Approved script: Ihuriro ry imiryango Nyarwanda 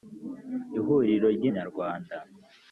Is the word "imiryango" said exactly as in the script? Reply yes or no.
no